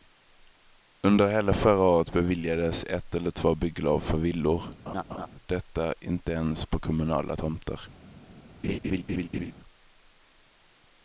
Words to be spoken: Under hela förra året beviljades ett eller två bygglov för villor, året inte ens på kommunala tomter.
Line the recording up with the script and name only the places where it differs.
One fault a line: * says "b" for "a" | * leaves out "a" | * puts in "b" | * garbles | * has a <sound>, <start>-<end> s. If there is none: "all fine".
* has a laugh, 4.9-5.3 s
* says "detta" for "året"
* has a laugh, 8.6-9.5 s